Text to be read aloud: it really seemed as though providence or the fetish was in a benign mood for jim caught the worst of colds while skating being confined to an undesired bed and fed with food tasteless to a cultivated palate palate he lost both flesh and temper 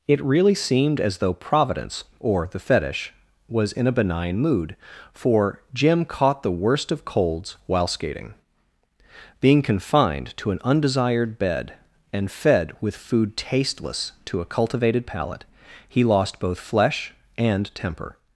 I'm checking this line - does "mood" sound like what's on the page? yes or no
yes